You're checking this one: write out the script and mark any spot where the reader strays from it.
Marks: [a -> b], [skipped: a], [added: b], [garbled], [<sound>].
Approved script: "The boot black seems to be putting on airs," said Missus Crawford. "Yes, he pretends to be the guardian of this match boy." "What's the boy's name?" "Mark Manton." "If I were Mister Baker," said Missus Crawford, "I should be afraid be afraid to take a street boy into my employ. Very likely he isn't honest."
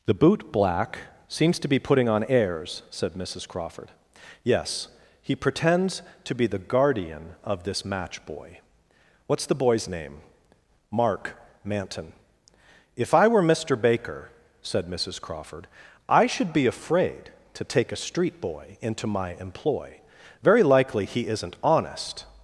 "The boot black seems to be putting on airs," said Missus Crawford. "Yes, he pretends to be the guardian of this match boy." "What's the boy's name?" "Mark Manton." "If I were Mister Baker," said Missus Crawford, "I should be afraid [skipped: be afraid] to take a street boy into my employ. Very likely he isn't honest."